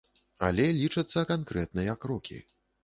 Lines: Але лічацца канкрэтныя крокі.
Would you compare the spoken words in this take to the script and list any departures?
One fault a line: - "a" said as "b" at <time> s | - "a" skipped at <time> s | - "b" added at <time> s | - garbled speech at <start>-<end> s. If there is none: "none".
none